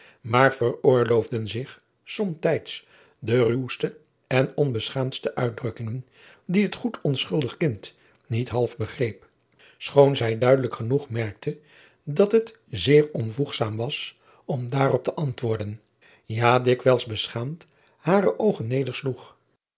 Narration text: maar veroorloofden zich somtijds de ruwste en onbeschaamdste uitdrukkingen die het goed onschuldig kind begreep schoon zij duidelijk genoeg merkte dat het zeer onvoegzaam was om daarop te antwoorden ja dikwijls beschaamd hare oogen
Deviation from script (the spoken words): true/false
true